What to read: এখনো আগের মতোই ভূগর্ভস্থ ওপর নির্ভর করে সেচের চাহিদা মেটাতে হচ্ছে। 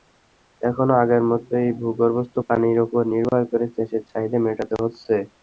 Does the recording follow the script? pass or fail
fail